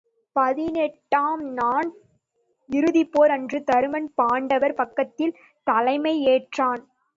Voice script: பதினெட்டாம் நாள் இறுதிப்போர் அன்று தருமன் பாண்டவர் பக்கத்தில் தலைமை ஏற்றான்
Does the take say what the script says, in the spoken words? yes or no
yes